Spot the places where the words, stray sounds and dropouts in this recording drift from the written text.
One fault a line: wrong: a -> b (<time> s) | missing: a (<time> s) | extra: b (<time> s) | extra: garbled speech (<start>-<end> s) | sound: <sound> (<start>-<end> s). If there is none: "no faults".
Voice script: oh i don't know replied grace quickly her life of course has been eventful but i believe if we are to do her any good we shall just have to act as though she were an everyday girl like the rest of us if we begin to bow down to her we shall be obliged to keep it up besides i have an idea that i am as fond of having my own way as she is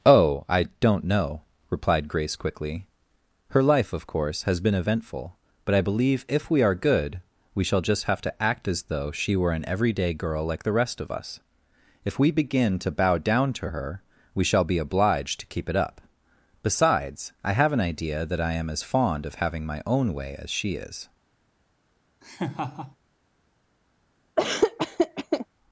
missing: to do her any (6.7 s)
sound: laugh (22.2-23.0 s)
sound: laugh (24.4-25.5 s)